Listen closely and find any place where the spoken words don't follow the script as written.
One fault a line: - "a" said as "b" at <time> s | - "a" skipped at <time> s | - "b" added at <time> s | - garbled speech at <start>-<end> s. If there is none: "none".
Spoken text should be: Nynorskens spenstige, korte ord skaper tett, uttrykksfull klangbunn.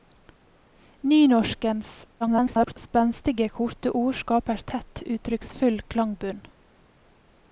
- garbled speech at 2.2-2.8 s